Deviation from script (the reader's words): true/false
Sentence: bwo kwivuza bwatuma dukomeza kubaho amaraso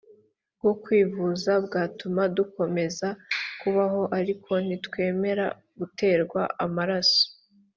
true